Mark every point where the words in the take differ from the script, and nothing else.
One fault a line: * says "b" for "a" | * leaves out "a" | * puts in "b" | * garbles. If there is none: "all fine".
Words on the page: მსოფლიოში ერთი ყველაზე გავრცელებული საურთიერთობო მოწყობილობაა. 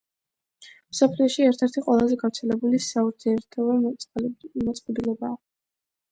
* puts in "ერთ"